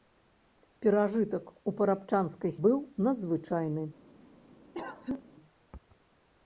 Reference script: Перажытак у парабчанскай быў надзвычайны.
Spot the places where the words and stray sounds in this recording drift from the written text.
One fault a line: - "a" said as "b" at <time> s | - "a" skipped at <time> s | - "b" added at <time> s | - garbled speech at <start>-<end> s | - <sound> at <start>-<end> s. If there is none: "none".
- cough at 4.7-5.2 s